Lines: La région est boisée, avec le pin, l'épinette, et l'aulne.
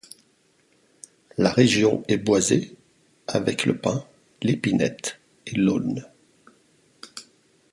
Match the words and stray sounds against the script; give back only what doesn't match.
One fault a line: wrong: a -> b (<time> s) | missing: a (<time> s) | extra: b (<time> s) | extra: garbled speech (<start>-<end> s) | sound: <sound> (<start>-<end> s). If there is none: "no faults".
no faults